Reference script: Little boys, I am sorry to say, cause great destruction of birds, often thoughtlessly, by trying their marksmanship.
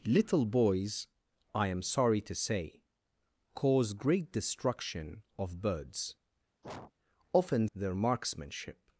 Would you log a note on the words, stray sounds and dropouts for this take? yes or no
yes